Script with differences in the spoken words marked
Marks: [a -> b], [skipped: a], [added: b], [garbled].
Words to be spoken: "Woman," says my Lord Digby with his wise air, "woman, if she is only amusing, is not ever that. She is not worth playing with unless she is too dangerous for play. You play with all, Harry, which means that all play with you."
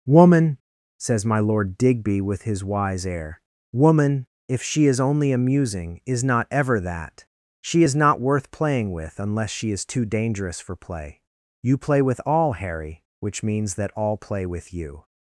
"Woman," says my Lord Digby with his wise air, "woman, if she is only amusing, is not ever that. She is not worth playing with unless she is too dangerous for play. You play with all, Harry, which means that all play with you."